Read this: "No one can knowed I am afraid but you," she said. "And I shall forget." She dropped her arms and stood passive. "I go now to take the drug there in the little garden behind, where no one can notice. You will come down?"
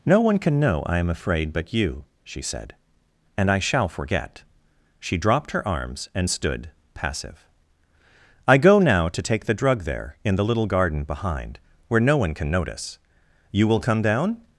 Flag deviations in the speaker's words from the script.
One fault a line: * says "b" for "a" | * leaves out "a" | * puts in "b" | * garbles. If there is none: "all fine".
* says "know" for "knowed"